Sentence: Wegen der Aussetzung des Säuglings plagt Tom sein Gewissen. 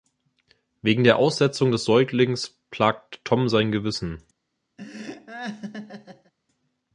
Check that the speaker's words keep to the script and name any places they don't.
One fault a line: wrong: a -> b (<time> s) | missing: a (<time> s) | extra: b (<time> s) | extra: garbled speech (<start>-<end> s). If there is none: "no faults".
no faults